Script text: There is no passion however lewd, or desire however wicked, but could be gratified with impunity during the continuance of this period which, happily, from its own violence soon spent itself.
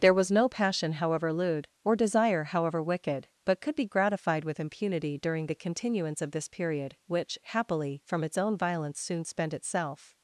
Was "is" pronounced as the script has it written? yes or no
no